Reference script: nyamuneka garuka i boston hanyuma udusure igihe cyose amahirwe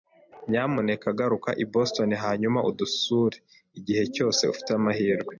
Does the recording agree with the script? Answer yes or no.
no